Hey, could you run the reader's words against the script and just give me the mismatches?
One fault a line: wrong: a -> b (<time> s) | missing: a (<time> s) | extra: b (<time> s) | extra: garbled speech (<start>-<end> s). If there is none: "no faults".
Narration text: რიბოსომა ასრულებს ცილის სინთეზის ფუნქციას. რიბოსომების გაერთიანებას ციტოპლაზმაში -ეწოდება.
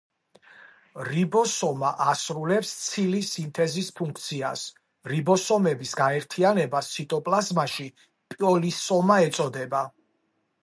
extra: პოლისომა (8.4 s)